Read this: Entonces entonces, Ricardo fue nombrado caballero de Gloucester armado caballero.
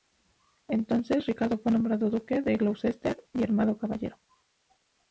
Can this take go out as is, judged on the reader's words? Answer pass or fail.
fail